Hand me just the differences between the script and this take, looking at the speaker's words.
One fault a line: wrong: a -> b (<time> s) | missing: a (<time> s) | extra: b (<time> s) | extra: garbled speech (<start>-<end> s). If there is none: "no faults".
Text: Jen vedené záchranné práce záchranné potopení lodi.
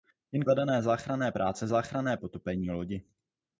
no faults